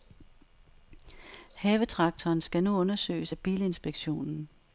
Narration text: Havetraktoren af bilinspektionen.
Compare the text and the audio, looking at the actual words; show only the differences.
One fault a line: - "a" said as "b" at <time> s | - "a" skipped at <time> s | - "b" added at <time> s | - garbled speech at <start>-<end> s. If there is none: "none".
- "skal nu undersøges" added at 2.4 s